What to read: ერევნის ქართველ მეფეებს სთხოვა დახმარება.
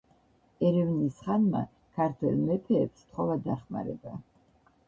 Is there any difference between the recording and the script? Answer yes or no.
yes